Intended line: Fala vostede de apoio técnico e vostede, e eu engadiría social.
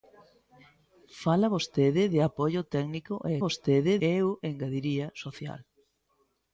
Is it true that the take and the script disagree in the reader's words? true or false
false